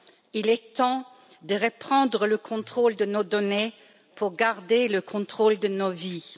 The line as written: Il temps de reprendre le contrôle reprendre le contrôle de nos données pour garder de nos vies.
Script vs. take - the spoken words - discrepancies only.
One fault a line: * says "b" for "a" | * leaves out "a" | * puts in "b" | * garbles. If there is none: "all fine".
* puts in "est"
* leaves out "reprendre le contrôle"
* puts in "le contrôle"